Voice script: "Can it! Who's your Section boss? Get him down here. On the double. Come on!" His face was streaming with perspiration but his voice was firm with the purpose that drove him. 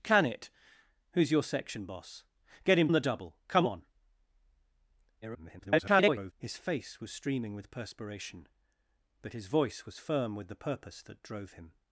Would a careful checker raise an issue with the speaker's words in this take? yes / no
yes